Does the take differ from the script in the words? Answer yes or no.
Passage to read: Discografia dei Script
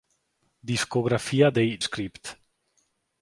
no